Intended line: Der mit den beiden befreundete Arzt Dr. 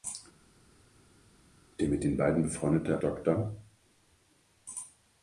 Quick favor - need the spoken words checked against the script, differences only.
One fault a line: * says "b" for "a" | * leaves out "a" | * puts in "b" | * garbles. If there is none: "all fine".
* leaves out "Arzt"